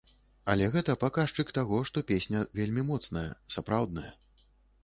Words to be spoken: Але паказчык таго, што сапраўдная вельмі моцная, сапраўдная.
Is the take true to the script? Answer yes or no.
no